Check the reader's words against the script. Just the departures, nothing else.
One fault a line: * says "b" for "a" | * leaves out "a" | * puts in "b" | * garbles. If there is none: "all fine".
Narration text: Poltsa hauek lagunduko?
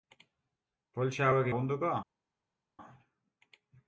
all fine